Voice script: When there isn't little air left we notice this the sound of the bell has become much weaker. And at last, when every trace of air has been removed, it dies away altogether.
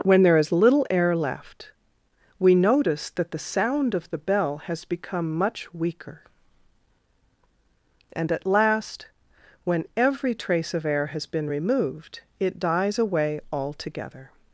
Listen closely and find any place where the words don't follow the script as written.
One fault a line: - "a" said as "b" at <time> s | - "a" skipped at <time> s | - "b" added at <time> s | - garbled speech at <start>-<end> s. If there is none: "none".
- "isn't" said as "is" at 0.4 s
- "this" said as "that" at 3.1 s